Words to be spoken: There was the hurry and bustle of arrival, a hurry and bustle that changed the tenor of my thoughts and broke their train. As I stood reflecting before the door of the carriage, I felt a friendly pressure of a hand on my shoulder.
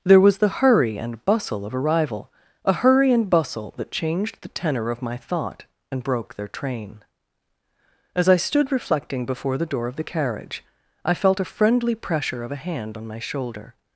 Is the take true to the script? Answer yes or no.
no